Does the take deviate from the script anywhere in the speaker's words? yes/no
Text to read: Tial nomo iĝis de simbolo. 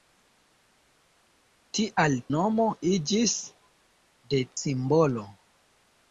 no